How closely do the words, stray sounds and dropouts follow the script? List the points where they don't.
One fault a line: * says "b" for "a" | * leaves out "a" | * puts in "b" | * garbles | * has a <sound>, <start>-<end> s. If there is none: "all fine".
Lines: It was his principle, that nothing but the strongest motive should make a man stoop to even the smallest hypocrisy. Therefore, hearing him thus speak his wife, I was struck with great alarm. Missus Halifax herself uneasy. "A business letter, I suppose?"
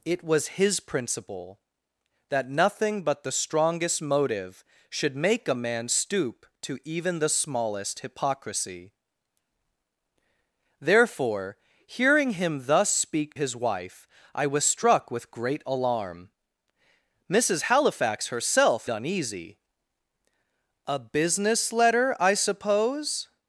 all fine